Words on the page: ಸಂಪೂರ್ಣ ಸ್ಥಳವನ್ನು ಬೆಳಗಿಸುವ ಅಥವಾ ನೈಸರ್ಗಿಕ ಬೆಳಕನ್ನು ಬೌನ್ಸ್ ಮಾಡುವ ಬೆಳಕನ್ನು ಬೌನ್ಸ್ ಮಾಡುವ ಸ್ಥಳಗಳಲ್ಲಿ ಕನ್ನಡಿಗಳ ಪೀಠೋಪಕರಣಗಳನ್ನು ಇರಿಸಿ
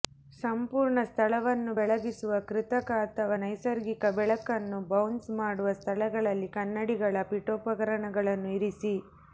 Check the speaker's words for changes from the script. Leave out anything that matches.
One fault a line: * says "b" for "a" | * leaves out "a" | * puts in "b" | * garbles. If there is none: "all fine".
* puts in "ಕೃತಕ"
* leaves out "ಬೆಳಕನ್ನು ಬೌನ್ಸ್ ಮಾಡುವ"